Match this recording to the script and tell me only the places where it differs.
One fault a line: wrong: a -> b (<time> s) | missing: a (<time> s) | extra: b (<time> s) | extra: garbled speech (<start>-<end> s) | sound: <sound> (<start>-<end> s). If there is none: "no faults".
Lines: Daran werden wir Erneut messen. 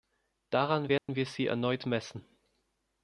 sound: dropout (1.0-1.1 s)
extra: Sie (1.3 s)